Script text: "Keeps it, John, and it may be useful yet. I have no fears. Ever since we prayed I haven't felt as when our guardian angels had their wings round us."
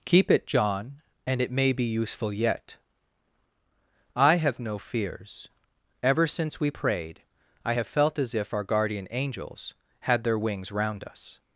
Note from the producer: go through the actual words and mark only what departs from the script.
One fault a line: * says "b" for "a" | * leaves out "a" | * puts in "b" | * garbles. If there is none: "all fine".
* says "Keep" for "Keeps"
* says "have" for "haven't"
* says "if" for "when"